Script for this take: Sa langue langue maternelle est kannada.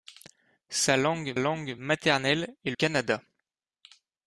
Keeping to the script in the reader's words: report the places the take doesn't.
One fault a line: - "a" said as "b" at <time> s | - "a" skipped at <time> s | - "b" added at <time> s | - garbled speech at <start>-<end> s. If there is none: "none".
none